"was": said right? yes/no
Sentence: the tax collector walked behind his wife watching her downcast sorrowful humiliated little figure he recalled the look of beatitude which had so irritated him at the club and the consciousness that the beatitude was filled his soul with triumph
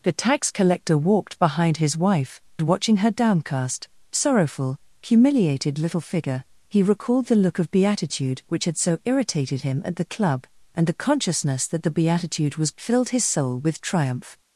yes